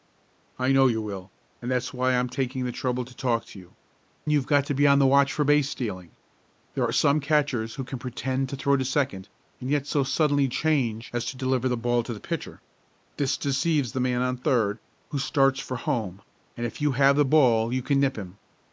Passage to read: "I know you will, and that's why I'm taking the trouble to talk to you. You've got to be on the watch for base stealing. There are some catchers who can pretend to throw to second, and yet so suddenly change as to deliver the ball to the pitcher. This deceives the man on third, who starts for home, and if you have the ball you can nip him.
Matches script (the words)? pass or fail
pass